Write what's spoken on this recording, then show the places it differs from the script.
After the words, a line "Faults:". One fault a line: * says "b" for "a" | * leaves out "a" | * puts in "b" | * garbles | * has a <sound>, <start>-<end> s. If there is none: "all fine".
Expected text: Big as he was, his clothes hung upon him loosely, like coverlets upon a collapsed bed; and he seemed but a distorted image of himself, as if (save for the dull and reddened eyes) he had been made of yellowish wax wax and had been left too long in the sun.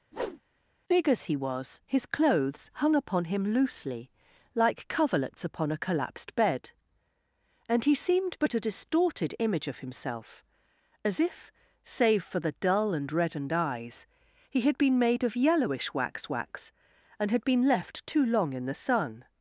Big as he was, his clothes hung upon him loosely, like coverlets upon a collapsed bed; and he seemed but a distorted image of himself, as if (save for the dull and reddened eyes) he had been made of yellowish wax wax and had been left too long in the sun.
Faults:
* has a whoosh, 0.1-0.4 s